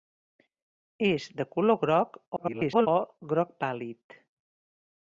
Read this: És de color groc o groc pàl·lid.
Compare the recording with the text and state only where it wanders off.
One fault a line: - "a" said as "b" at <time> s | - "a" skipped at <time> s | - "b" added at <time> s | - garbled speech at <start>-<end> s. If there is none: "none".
- garbled speech at 2.4-2.9 s